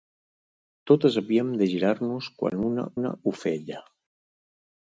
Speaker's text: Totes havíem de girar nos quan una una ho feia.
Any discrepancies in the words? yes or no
no